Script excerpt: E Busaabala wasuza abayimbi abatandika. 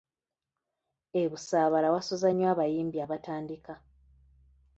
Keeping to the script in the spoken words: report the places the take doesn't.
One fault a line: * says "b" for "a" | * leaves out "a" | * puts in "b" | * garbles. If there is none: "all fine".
* puts in "nnyo"